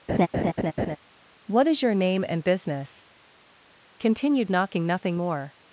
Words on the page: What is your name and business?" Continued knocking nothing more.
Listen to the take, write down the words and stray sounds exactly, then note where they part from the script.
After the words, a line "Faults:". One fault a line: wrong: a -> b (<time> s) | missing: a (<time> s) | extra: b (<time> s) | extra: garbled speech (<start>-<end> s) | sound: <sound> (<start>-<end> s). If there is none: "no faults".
What is your name and business?" Continued knocking nothing more.
Faults:
sound: laugh (0.1-1.0 s)